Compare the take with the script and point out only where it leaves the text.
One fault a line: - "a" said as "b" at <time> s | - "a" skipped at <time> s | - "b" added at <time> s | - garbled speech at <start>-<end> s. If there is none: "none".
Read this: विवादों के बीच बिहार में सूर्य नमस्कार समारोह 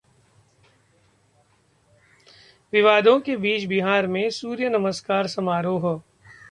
none